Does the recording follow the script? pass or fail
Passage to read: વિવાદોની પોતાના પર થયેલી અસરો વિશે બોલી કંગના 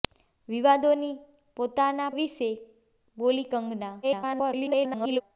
fail